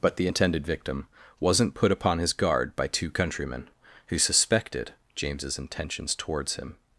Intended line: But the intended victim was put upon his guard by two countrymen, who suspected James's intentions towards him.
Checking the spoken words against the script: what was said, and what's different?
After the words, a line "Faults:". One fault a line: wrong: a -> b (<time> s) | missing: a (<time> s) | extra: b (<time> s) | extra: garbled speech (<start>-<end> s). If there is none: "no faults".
But the intended victim wasn't put upon his guard by two countrymen, who suspected James's intentions towards him.
Faults:
wrong: was -> wasn't (1.4 s)